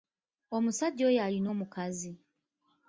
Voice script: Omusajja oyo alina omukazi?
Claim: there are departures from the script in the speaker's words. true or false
false